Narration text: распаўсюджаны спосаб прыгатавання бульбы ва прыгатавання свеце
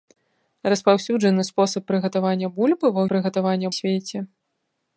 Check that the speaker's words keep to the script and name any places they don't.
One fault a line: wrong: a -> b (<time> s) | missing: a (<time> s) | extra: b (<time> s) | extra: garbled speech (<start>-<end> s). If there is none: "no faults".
no faults